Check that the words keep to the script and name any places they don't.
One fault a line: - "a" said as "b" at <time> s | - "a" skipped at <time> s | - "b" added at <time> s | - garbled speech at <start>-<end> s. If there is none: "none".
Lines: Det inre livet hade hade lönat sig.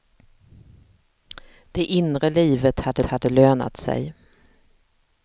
none